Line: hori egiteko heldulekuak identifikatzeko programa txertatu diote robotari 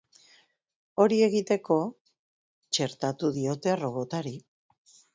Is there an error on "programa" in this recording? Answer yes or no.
yes